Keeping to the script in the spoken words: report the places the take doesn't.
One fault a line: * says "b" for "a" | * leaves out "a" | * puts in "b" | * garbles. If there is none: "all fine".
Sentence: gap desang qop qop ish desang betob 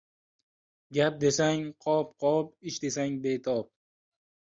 all fine